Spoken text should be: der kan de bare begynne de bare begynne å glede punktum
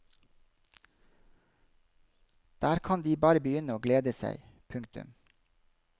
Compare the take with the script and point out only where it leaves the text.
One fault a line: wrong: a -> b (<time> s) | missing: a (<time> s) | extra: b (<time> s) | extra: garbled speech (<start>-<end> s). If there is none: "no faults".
missing: de bare begynne (3.8 s)
extra: seg (4.1 s)